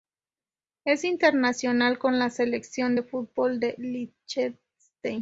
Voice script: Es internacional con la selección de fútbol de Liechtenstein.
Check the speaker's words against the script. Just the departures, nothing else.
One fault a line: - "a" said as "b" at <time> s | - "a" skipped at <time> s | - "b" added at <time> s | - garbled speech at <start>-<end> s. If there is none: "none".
none